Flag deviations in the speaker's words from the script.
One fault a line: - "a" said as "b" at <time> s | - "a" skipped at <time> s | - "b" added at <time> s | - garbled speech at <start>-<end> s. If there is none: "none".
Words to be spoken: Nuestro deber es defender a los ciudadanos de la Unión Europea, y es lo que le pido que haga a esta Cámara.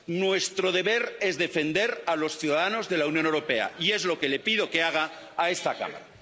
none